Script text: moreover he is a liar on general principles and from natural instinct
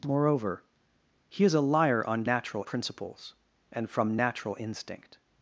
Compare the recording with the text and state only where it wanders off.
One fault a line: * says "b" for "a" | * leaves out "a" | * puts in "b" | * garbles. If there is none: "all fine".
* says "natural" for "general"